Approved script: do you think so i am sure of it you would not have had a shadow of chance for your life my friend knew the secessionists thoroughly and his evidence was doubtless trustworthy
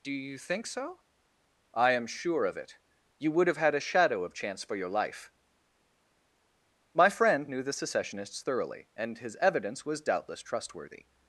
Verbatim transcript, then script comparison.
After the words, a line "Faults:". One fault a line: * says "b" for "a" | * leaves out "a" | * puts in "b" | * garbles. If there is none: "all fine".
do you think so i am sure of it you would have had a shadow of chance for your life my friend knew the secessionists thoroughly and his evidence was doubtless trustworthy
Faults:
* leaves out "not"